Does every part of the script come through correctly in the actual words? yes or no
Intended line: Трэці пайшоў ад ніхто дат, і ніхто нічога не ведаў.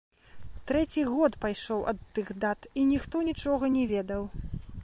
no